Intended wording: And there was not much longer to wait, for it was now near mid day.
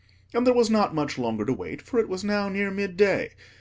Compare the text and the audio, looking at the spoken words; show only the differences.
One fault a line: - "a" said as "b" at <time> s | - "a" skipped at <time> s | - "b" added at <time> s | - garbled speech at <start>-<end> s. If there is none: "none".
none